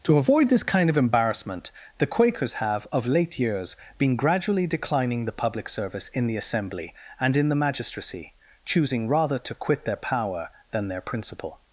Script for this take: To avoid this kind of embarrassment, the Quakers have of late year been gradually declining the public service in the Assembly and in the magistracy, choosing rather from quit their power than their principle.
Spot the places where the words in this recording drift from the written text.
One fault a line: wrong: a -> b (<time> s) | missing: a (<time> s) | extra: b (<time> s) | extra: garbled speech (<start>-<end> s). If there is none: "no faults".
wrong: year -> years (3.4 s)
wrong: from -> to (9.4 s)